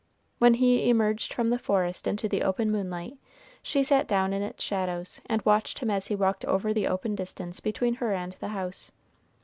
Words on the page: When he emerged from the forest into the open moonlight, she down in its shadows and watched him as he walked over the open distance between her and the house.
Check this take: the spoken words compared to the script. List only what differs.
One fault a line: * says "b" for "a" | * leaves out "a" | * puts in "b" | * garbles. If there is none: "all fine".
* puts in "sat"